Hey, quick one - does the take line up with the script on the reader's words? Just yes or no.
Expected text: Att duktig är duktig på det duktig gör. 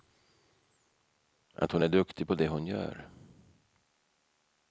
no